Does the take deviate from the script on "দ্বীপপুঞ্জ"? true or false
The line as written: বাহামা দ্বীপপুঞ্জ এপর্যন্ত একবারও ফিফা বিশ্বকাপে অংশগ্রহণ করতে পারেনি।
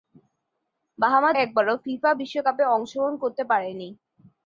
true